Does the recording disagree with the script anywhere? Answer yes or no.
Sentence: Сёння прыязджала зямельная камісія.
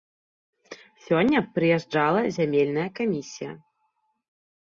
no